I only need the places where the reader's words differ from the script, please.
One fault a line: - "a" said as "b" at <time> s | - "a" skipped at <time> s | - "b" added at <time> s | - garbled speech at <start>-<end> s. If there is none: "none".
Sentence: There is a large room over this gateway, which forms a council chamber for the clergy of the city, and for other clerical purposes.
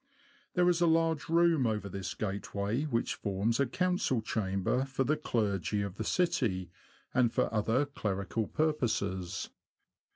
none